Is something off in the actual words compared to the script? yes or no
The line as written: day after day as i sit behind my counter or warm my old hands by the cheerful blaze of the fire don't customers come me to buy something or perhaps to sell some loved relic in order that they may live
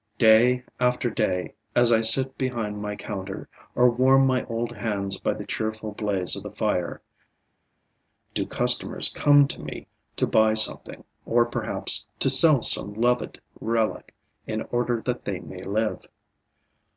yes